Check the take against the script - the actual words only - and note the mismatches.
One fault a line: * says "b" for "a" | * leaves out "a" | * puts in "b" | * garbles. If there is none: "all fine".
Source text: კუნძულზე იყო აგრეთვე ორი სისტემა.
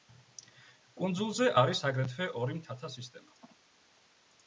* says "არის" for "იყო"
* puts in "მთათა"